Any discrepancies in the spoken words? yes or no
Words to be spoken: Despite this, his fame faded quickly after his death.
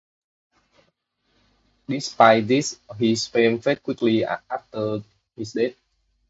no